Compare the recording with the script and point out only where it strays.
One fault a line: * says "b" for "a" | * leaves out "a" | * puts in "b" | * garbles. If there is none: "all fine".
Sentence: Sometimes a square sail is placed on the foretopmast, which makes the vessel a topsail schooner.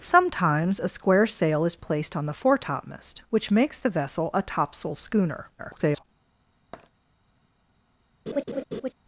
* garbles